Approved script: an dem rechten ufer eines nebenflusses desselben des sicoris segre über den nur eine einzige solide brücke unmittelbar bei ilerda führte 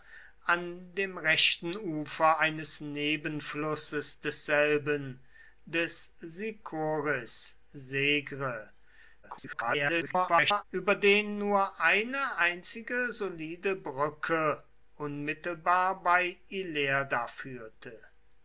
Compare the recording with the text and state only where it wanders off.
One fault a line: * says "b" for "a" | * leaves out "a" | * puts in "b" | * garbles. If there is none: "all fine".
* garbles